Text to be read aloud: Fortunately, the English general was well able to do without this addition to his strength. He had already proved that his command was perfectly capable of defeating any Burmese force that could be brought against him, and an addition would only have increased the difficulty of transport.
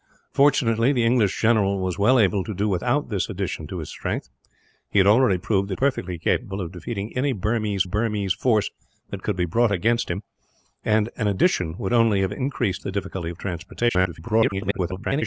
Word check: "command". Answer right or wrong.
wrong